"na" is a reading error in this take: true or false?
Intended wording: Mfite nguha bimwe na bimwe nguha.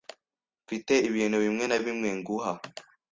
false